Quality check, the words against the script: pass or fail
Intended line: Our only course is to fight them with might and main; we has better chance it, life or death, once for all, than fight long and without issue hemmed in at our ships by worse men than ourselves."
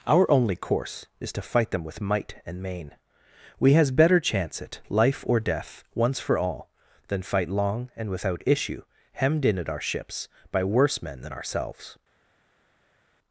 pass